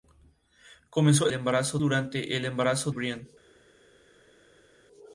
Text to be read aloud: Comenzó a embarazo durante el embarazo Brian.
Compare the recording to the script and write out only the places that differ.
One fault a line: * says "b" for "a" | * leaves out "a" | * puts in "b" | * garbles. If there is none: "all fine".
all fine